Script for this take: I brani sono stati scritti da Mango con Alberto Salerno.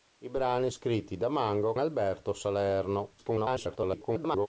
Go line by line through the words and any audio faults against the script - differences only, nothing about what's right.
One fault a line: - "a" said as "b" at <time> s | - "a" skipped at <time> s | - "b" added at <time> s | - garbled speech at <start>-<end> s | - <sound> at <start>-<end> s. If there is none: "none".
- "sono stati" skipped at 0.7 s
- "con" skipped at 1.8 s
- garbled speech at 3.2-4.5 s